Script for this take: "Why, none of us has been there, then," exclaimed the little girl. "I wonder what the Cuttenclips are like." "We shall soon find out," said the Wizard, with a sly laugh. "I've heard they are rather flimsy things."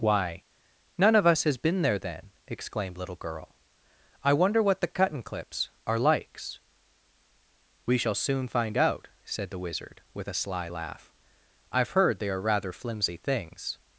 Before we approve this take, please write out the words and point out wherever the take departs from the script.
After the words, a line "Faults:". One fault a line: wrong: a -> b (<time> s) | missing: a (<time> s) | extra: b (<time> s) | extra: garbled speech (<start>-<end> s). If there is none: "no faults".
"Why, none of us has been there, then," exclaimed little girl. "I wonder what the Cuttenclips are likes." "We shall soon find out," said the Wizard, with a sly laugh. "I've heard they are rather flimsy things."
Faults:
missing: the (3.0 s)
wrong: like -> likes (6.0 s)